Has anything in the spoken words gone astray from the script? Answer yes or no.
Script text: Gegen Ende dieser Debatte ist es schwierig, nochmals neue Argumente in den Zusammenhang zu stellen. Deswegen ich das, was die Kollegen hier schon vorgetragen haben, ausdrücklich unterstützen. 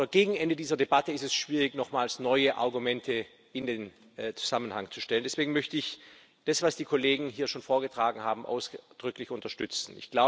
yes